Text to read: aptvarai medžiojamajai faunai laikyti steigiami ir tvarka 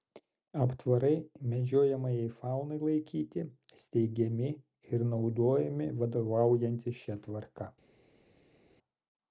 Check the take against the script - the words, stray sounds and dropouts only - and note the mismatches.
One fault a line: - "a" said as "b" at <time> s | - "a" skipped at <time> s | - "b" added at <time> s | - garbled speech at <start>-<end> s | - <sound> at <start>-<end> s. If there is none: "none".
- "naudojami vadovaujantis šia" added at 5.1 s